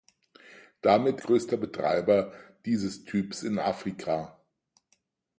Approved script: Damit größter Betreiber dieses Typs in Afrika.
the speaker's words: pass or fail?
pass